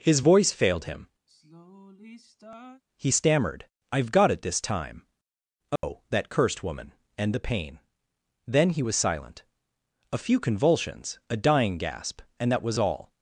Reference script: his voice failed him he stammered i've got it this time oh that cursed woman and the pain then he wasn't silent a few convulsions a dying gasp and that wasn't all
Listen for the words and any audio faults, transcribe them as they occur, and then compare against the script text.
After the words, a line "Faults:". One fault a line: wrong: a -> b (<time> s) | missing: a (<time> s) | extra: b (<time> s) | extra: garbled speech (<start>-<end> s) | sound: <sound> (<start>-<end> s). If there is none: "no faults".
his voice failed him he stammered i've got it this time oh that cursed woman and the pain then he was silent a few convulsions a dying gasp and that was all
Faults:
sound: sigh (1.3-2.8 s)
sound: dropout (5.8-5.8 s)
wrong: wasn't -> was (8.8 s)
wrong: wasn't -> was (12.6 s)